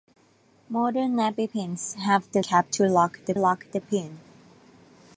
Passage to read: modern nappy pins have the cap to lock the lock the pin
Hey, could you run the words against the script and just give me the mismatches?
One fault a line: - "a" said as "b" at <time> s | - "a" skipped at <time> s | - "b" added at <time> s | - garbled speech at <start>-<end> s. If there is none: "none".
none